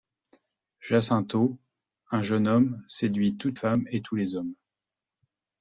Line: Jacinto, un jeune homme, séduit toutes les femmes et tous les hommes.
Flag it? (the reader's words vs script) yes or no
yes